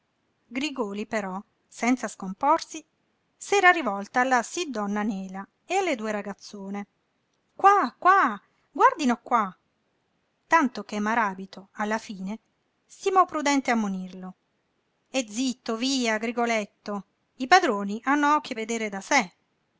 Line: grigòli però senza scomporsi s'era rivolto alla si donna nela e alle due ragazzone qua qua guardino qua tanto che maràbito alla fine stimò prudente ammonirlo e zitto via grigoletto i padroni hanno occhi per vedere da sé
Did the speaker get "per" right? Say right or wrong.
wrong